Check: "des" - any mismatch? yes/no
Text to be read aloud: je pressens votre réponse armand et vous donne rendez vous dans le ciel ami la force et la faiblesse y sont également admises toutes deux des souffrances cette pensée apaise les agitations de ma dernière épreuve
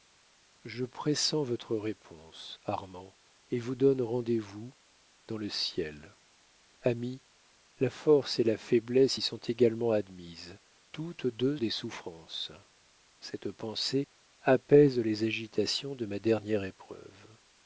no